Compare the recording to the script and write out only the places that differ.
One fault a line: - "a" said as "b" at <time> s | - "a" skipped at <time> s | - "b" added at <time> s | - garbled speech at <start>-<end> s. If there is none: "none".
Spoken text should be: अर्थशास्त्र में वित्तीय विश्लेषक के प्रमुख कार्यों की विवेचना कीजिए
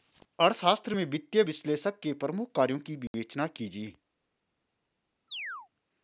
none